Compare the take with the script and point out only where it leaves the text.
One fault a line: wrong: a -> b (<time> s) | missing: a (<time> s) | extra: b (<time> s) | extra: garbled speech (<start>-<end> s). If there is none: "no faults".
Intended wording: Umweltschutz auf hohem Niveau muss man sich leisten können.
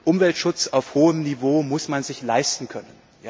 no faults